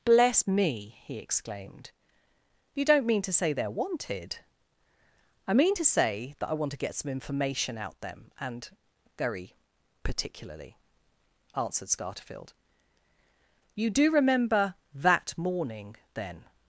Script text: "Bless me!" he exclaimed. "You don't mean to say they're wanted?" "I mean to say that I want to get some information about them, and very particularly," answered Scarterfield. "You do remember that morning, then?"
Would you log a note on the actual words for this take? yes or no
yes